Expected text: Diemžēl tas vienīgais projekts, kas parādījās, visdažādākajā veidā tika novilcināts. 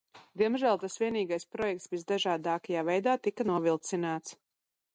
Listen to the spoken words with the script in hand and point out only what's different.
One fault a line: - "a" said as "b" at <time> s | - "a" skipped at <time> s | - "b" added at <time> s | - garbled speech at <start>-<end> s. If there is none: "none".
- "kas parādījās" skipped at 1.9 s